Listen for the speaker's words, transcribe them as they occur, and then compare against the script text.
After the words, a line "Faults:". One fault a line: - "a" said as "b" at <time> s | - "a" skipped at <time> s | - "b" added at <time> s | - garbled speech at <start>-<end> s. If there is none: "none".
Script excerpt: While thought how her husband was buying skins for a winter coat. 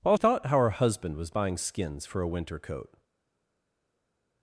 While thought how her husband was buying skins for a winter coat.
Faults:
none